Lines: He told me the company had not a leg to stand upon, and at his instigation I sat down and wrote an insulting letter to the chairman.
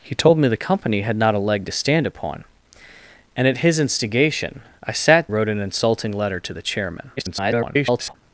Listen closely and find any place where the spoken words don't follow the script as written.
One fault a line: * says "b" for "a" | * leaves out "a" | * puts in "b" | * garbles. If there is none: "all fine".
* leaves out "down and"
* garbles